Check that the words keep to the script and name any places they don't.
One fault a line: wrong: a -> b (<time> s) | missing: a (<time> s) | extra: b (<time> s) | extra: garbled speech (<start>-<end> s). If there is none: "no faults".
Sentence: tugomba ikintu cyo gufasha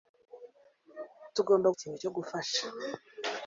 no faults